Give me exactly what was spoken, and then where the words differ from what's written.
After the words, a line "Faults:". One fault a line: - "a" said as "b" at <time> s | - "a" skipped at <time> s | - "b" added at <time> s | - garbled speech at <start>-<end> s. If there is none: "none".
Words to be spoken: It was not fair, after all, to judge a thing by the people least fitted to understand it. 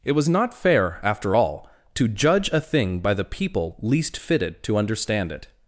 It was not fair, after all, to judge a thing by the people least fitted to understand it.
Faults:
none